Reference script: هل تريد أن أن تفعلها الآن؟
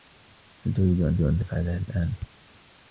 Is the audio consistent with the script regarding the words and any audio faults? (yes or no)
yes